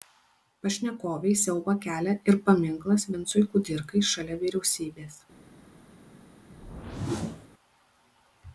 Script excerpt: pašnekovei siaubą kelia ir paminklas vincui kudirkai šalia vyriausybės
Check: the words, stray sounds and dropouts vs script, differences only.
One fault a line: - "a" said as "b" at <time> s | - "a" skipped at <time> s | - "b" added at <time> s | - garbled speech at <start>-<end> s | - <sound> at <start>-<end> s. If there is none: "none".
- whoosh at 6.5-7.5 s